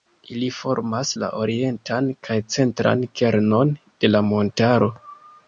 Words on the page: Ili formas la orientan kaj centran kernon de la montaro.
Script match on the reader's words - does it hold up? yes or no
yes